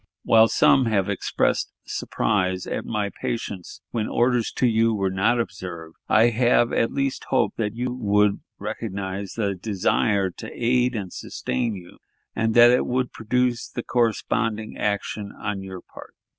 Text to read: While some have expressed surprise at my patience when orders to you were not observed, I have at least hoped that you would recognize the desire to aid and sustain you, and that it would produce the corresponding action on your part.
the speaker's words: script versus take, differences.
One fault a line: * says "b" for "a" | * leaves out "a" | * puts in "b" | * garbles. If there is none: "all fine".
all fine